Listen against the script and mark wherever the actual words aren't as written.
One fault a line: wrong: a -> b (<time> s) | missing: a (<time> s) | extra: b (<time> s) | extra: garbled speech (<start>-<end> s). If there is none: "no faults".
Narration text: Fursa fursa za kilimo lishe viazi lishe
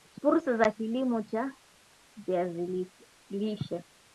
missing: fursa (0.6 s)
wrong: lishe -> cha (1.2 s)